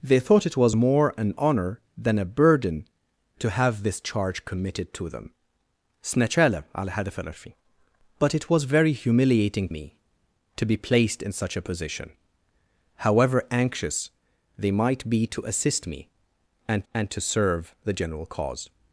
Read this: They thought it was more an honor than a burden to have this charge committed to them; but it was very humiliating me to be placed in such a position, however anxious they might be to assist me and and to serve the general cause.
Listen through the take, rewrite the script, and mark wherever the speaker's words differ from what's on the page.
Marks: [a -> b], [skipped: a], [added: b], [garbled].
They thought it was more an honor than a burden to have this charge committed to them; but it was very humiliating me to be placed in such a position, however anxious they might be to assist me and and to serve the general cause.